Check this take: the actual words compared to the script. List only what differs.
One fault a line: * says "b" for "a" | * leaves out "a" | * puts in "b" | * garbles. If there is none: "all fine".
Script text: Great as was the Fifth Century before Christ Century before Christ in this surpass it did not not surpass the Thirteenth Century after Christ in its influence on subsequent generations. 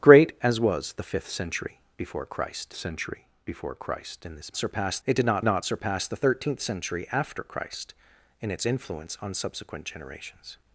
all fine